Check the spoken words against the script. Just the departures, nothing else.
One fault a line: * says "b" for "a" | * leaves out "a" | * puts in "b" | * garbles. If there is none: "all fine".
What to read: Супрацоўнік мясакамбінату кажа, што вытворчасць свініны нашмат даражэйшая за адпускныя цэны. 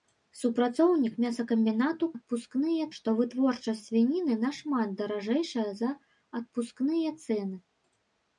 * says "адпускныя" for "кажа"